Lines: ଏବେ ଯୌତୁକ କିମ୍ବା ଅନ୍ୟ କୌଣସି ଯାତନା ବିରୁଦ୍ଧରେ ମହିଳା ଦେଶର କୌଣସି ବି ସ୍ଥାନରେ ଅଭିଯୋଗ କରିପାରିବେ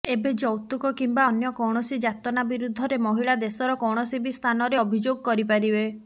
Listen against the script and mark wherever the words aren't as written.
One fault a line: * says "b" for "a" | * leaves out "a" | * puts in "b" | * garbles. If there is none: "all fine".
all fine